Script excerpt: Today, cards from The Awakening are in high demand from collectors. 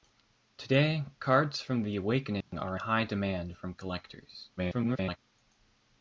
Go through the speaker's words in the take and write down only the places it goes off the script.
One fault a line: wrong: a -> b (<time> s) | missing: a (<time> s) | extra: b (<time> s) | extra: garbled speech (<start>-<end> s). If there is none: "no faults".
missing: in (2.8 s)
extra: garbled speech (4.6-5.2 s)